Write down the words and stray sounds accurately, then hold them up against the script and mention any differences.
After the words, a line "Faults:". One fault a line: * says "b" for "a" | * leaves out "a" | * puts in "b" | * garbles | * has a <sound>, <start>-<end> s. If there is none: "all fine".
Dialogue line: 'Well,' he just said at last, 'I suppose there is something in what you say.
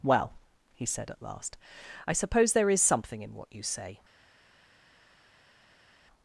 'Well,' he said at last, 'I suppose there is something in what you say.
Faults:
* leaves out "just"